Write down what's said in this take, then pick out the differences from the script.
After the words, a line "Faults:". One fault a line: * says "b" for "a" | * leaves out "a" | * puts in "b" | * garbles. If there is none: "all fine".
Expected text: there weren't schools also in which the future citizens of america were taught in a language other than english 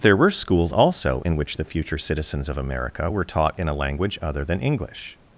there were schools also in which the future citizens of america were taught in a language other than english
Faults:
* says "were" for "weren't"